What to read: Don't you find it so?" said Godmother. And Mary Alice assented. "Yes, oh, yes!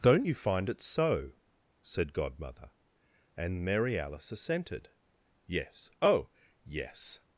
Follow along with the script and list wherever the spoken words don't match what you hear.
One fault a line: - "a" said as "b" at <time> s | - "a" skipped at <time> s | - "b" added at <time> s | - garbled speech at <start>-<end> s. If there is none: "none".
none